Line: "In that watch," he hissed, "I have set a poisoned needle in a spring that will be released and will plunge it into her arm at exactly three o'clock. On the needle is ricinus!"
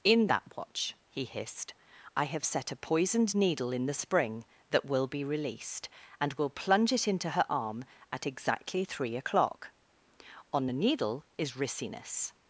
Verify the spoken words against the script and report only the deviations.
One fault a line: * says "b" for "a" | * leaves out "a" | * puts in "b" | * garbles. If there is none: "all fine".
* says "the" for "a"